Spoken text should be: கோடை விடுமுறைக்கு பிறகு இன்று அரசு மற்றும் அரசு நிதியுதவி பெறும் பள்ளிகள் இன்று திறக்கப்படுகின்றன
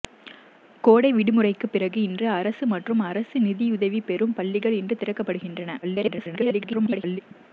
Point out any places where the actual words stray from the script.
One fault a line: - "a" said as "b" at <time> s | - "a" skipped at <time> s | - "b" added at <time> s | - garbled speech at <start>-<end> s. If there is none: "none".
- garbled speech at 5.8-7.2 s